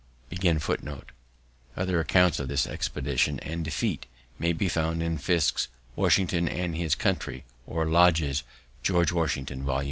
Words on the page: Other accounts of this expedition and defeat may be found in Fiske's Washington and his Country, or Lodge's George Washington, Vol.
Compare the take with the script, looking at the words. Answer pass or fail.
pass